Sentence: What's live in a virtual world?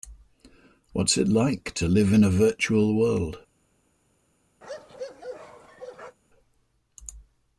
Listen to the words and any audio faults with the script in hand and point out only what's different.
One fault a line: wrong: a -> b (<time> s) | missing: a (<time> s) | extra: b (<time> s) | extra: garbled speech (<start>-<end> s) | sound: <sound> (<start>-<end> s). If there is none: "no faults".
extra: it like to (1.1 s)
sound: bark (4.6-6.2 s)